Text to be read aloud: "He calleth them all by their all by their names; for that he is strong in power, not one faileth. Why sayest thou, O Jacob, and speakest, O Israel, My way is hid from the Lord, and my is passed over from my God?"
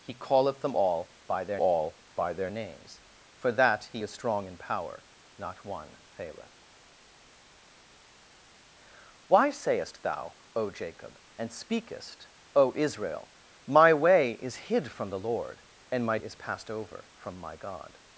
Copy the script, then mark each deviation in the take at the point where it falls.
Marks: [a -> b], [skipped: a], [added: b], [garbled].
"He calleth them all by their all by their names; for that he is strong in power, not one faileth. Why sayest thou, O Jacob, and speakest, O Israel, My way is hid from the Lord, and my is passed over from my God?"